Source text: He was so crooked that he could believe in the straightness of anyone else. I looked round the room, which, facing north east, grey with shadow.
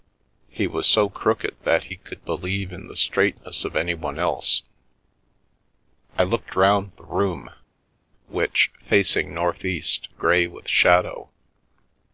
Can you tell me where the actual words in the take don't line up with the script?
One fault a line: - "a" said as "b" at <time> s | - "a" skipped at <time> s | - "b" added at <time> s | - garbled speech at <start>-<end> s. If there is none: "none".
none